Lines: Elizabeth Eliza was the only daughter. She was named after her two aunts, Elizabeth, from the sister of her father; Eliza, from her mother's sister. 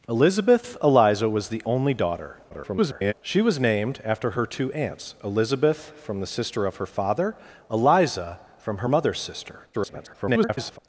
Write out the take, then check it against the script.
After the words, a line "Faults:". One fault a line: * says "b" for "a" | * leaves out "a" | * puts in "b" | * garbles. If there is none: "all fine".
Elizabeth Eliza was the only daughter. [garbled] She was named after her two aunts, Elizabeth, from the sister of her father; Eliza, from her mother's sister. [garbled]
Faults:
* garbles
* garbles